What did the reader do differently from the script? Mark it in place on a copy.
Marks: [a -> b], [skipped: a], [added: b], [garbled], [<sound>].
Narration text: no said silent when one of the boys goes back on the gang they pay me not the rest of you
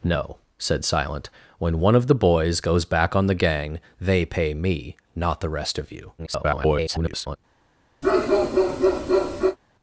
no said silent when one of the boys goes back on the gang they pay me not the rest of you [garbled] [bark]